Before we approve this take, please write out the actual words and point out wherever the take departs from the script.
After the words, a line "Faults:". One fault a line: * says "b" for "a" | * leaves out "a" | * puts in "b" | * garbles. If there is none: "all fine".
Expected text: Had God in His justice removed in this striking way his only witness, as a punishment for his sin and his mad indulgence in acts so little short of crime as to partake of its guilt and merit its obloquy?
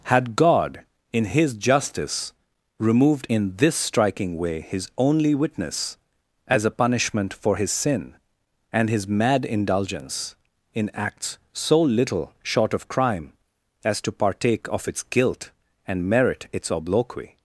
Had God in His justice removed in this striking way his only witness, as a punishment for his sin and his mad indulgence in acts so little short of crime as to partake of its guilt and merit its obloquy?
Faults:
all fine